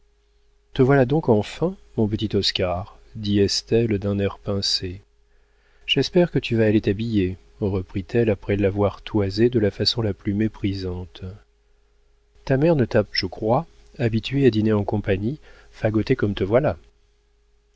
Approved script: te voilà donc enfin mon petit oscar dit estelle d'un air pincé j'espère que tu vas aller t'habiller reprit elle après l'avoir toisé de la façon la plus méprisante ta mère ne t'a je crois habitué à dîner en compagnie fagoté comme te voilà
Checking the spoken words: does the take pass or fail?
pass